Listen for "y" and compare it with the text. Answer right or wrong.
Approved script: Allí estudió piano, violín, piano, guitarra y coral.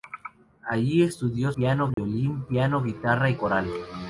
right